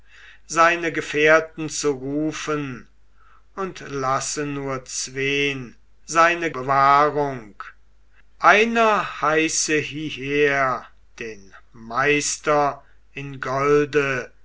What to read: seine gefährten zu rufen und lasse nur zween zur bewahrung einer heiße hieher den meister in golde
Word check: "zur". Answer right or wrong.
wrong